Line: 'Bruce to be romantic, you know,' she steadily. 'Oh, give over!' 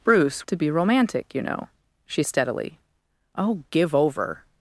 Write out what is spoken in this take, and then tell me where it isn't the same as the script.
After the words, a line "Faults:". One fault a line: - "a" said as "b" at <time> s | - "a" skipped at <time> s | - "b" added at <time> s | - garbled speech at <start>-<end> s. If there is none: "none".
'Bruce to be romantic, you know,' she steadily. 'Oh, give over!'
Faults:
none